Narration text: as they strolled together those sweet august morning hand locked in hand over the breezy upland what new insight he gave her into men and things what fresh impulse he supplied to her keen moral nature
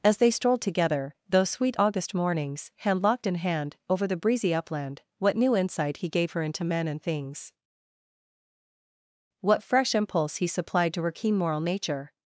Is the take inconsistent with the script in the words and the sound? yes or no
yes